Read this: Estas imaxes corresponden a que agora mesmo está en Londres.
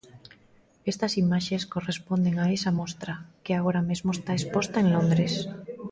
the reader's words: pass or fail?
fail